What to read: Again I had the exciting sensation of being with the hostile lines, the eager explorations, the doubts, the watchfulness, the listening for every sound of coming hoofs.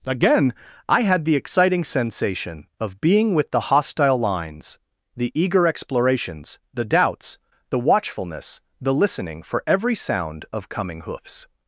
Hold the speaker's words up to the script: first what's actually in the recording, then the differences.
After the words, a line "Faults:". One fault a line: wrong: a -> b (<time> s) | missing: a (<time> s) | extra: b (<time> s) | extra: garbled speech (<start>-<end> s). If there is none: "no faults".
Again I had the exciting sensation of being with the hostile lines, the eager explorations, the doubts, the watchfulness, the listening for every sound of coming hoofs.
Faults:
no faults